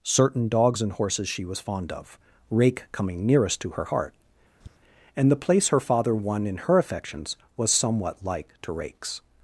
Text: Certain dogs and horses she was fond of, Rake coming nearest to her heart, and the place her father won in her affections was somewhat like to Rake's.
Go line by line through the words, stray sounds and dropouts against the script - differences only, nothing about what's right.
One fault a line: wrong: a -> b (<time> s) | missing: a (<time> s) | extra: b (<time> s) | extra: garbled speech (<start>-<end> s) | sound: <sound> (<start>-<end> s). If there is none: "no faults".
sound: tap (4.6-4.8 s)